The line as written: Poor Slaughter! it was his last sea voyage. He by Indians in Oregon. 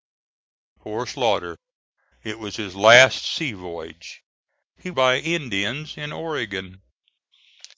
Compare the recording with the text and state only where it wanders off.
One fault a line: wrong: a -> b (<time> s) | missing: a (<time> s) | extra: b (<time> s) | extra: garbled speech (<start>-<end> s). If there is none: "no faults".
no faults